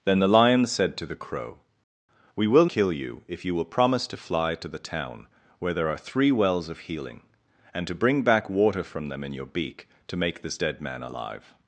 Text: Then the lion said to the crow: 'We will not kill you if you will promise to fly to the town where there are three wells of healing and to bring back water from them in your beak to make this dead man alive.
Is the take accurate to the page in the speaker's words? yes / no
no